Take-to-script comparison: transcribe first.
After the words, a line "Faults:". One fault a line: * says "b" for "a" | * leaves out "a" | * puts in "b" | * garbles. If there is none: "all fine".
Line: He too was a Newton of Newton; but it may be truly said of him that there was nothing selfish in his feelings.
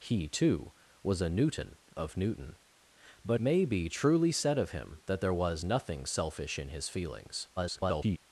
He too was a Newton of Newton; but may be truly said of him that there was nothing selfish in his feelings. [garbled]
Faults:
* leaves out "it"
* garbles